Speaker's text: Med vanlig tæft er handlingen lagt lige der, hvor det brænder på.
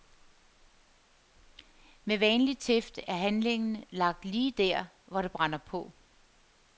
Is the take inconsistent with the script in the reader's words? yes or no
no